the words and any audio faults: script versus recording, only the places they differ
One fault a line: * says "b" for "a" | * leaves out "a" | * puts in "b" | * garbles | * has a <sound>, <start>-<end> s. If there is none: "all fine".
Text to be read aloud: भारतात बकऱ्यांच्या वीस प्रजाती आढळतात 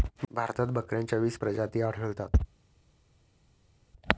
all fine